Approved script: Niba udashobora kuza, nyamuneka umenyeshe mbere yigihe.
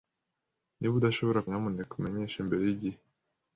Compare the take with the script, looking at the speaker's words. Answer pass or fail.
fail